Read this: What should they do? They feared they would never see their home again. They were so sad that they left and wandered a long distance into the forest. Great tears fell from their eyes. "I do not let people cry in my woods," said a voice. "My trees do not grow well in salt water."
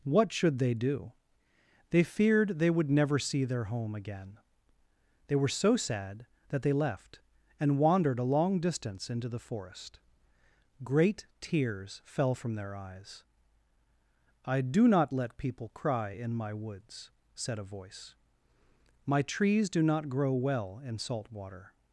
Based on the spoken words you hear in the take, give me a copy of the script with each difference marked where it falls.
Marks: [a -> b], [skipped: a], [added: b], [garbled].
What should they do? They feared they would never see their home again. They were so sad that they left and wandered a long distance into the forest. Great tears fell from their eyes. "I do not let people cry in my woods," said a voice. "My trees do not grow well in salt water."